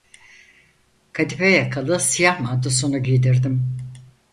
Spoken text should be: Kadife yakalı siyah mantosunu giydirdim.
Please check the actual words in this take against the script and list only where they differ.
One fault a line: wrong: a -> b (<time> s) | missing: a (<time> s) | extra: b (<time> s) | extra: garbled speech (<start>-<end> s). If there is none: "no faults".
no faults